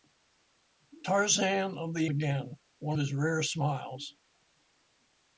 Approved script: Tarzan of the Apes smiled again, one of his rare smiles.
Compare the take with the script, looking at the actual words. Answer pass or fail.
fail